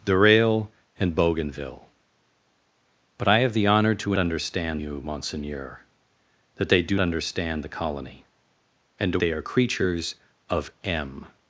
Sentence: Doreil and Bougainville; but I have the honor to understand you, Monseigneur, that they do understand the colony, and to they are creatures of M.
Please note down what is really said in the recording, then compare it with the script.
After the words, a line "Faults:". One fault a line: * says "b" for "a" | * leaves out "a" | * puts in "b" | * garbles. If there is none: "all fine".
Doreil and Bougainville; but I have the honor to understand you, Monseigneur, that they do understand the colony, and to they are creatures of M.
Faults:
all fine